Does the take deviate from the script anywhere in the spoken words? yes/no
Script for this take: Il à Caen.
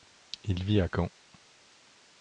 yes